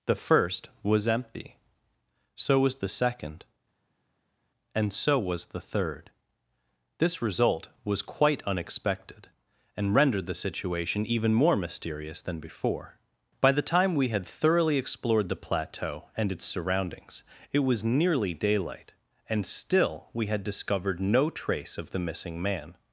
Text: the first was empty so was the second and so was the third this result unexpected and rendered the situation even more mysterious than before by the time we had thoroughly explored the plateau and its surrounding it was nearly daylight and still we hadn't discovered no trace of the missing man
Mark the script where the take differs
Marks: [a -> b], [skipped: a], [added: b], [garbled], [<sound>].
the first was empty so was the second and so was the third this result [added: was quite] unexpected and rendered the situation even more mysterious than before by the time we had thoroughly explored the plateau and its [surrounding -> surroundings] it was nearly daylight and still we [hadn't -> had] discovered no trace of the missing man